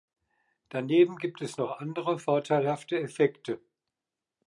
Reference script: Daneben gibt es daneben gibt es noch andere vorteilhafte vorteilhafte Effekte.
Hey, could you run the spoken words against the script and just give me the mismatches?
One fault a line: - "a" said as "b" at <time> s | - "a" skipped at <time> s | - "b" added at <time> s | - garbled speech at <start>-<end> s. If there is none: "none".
- "daneben gibt es" skipped at 1.6 s
- "vorteilhafte" skipped at 3.0 s